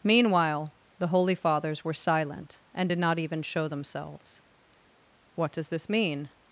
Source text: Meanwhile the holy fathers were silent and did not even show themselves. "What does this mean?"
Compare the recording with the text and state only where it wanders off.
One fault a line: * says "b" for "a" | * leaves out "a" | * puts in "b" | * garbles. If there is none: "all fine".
all fine